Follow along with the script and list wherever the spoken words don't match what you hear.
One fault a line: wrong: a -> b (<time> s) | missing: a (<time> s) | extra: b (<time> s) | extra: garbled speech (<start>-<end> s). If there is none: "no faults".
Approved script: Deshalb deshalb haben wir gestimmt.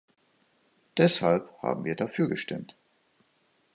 missing: deshalb (1.5 s)
extra: dafür (1.9 s)